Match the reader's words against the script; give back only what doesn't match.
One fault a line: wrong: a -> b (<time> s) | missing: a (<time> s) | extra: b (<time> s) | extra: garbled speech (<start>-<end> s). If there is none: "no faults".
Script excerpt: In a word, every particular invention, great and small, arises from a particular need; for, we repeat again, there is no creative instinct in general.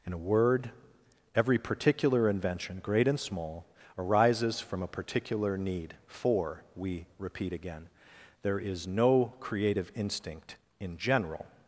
no faults